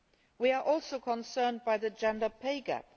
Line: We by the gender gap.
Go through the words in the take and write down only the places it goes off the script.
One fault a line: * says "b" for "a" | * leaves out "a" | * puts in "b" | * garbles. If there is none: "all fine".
* puts in "are also concerned"
* puts in "pay"